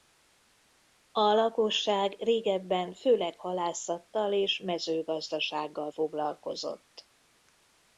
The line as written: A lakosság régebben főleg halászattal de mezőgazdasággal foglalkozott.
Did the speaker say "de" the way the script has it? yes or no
no